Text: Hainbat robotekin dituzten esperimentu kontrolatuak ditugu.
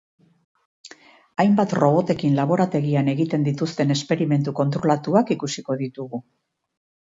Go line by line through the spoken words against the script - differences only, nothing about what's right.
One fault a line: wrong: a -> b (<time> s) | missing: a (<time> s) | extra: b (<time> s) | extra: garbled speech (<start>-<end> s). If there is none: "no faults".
extra: laborategian egiten (2.4 s)
extra: ikusiko (5.4 s)